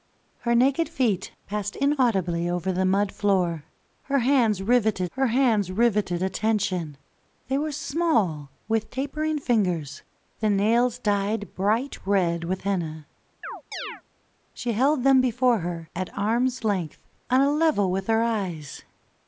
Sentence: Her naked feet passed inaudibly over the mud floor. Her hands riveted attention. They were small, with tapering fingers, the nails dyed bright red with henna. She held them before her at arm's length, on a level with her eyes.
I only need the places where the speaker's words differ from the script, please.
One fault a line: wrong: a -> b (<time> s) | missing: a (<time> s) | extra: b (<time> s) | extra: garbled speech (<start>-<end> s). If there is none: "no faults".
extra: her hands riveted (5.1 s)